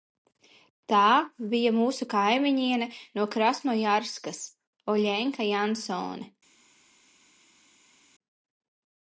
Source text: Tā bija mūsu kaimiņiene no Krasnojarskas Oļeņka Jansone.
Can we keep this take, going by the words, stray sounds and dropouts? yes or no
yes